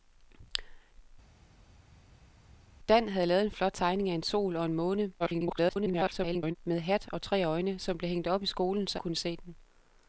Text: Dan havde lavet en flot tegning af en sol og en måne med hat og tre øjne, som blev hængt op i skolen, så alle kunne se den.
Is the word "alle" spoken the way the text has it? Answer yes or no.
no